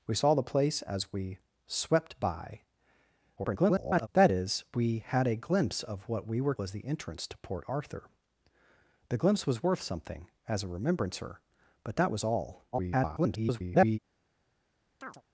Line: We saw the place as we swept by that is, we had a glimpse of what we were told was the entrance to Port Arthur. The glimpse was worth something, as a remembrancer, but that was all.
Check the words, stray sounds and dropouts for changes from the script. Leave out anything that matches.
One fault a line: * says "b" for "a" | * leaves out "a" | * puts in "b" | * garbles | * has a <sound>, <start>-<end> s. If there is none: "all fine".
* garbles
* leaves out "told"
* garbles
* has a chirp, 15.0-15.2 s